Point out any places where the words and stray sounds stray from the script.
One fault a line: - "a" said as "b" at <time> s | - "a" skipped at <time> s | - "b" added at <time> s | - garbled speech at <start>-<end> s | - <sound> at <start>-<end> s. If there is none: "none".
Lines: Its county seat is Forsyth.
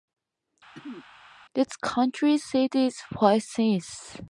- throat clearing at 0.7-1.1 s